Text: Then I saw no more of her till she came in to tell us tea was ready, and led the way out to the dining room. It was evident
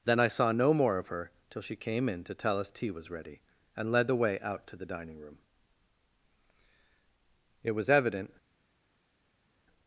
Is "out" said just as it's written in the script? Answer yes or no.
yes